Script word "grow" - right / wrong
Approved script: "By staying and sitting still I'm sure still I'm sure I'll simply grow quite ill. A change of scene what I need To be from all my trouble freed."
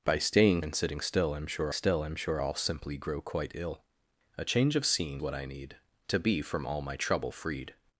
right